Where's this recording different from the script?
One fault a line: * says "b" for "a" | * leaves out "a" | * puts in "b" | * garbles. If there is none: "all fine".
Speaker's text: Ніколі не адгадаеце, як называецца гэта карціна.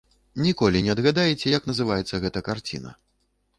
all fine